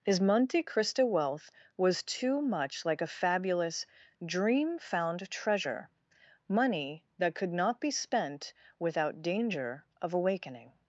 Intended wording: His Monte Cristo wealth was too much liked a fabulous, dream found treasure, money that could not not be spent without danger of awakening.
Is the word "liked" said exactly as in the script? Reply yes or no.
no